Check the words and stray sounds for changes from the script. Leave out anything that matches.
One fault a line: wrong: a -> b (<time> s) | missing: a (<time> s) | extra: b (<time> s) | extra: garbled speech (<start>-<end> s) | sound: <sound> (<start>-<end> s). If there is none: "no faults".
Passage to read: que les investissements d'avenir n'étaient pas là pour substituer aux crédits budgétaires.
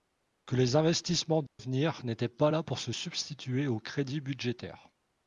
sound: dropout (1.5-1.6 s)
extra: se (2.8 s)